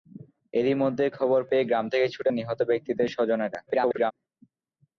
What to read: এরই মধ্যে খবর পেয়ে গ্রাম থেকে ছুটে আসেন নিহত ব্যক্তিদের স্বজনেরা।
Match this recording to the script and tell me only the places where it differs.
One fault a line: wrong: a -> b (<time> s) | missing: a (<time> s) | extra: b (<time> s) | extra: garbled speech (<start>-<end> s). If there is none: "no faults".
missing: আসেন (2.3 s)
extra: garbled speech (3.7-4.1 s)